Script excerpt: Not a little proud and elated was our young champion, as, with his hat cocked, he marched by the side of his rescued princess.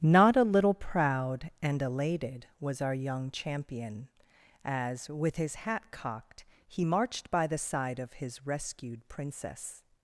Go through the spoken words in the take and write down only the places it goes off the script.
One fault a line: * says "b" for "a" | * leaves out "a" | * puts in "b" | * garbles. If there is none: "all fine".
all fine